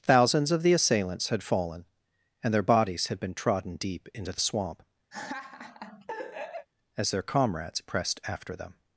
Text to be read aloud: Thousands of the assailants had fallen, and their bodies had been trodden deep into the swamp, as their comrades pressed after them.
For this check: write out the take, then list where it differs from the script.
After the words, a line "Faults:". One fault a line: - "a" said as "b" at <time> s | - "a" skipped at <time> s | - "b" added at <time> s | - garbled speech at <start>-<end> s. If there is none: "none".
Thousands of the assailants had fallen, and their bodies had been trodden deep into the swamp, as their comrades pressed after them.
Faults:
none